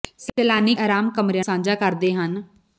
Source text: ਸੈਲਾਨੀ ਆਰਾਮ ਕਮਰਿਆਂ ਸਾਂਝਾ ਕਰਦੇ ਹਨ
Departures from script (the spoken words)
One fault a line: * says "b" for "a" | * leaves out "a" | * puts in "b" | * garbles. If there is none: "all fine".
all fine